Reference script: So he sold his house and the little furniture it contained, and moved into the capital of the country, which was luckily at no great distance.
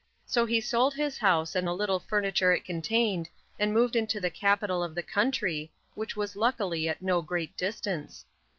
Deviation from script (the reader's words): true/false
false